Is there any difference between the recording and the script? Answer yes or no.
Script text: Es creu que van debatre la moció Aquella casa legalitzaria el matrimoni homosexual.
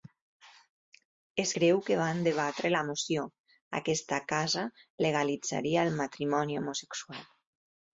yes